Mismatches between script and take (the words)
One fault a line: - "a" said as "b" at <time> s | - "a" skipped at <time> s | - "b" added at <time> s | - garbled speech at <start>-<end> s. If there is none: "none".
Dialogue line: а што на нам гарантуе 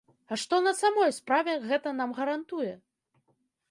- "самой справе гэта" added at 0.8 s